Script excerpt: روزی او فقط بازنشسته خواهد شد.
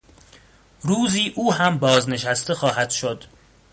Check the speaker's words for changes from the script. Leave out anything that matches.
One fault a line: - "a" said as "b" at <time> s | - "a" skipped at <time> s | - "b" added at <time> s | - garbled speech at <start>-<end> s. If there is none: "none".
- "فقط" said as "هم" at 1.5 s